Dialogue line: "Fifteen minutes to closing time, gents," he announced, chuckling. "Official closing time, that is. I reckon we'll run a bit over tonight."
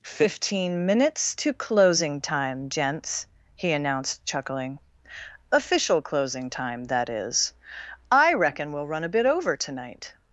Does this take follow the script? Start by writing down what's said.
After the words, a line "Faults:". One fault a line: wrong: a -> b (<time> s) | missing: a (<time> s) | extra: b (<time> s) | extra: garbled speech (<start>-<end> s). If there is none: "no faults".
"Fifteen minutes to closing time, gents," he announced, chuckling. "Official closing time, that is. I reckon we'll run a bit over tonight."
Faults:
no faults